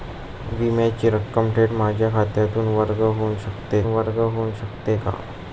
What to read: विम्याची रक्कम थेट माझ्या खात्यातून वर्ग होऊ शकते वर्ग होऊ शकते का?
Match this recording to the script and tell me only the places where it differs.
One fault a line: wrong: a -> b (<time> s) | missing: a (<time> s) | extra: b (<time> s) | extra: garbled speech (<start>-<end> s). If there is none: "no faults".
no faults